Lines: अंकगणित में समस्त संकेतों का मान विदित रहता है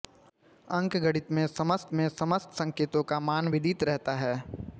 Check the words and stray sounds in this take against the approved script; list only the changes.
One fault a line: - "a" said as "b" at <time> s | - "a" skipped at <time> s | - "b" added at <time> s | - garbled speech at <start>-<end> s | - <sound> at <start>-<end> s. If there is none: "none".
- "में समस्त" added at 1.9 s